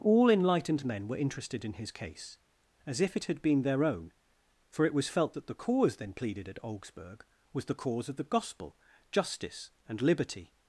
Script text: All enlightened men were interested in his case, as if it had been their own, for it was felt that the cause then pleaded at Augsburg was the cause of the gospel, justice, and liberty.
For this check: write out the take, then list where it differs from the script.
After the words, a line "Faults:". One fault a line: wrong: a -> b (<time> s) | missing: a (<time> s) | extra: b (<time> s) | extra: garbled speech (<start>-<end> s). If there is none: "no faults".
All enlightened men were interested in his case, as if it had been their own, for it was felt that the cause then pleaded at Augsburg was the cause of the gospel, justice, and liberty.
Faults:
no faults